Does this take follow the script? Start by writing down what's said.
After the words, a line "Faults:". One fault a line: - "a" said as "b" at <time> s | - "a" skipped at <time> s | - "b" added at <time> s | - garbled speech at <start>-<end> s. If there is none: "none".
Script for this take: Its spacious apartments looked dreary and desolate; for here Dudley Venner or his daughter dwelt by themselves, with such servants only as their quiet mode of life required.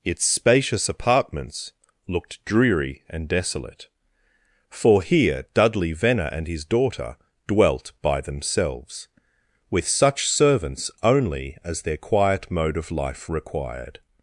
Its spacious apartments looked dreary and desolate; for here Dudley Venner and his daughter dwelt by themselves, with such servants only as their quiet mode of life required.
Faults:
- "or" said as "and" at 6.3 s